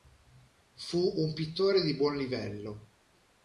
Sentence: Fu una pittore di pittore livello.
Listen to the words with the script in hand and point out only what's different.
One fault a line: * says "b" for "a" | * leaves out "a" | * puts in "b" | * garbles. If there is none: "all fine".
* says "un" for "una"
* says "buon" for "pittore"